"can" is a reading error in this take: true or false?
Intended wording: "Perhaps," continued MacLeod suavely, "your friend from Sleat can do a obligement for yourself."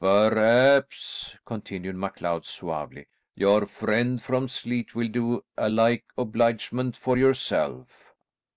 true